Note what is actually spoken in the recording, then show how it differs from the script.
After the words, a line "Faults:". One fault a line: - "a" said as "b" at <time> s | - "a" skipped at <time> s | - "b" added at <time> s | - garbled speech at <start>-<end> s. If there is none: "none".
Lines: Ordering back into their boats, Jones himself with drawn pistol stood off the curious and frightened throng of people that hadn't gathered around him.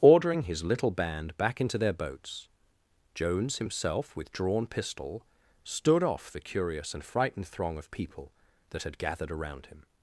Ordering his little band back into their boats, Jones himself with drawn pistol stood off the curious and frightened throng of people that had gathered around him.
Faults:
- "his little band" added at 0.4 s
- "hadn't" said as "had" at 8.8 s